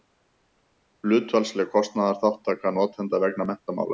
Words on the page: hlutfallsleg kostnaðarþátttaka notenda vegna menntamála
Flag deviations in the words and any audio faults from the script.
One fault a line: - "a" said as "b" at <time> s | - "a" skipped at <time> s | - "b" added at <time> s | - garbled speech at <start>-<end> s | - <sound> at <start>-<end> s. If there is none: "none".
none